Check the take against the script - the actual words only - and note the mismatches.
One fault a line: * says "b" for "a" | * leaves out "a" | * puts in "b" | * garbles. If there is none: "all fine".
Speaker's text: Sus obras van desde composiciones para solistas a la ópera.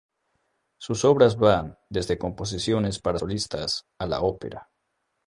all fine